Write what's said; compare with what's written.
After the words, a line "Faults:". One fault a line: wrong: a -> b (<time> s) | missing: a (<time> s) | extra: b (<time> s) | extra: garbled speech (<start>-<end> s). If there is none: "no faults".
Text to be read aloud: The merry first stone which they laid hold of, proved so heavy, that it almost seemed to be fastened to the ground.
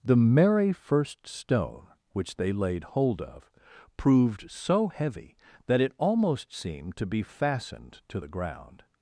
The merry first stone which they laid hold of, proved so heavy, that it almost seemed to be fastened to the ground.
Faults:
no faults